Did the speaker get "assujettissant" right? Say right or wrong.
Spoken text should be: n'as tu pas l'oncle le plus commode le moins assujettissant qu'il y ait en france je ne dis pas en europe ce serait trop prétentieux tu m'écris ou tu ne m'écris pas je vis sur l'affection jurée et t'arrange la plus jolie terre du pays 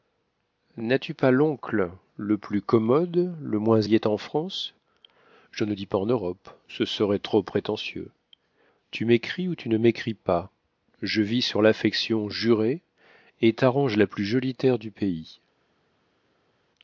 wrong